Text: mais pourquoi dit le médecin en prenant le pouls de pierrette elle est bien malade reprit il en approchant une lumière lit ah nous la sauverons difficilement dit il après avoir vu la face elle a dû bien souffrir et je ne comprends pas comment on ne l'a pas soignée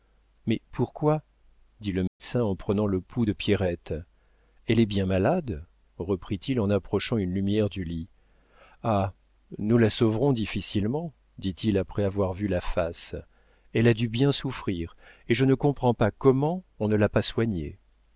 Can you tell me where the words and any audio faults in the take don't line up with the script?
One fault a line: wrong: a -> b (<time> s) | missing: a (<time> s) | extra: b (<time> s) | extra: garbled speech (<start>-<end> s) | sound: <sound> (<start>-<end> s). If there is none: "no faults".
sound: dropout (2.1-2.2 s)
extra: du (7.7 s)